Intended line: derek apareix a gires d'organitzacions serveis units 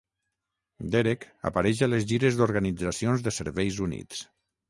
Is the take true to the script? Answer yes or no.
no